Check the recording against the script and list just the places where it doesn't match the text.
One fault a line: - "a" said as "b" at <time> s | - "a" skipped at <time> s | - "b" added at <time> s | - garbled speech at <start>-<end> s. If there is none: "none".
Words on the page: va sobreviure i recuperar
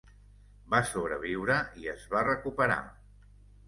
- "es va" added at 1.9 s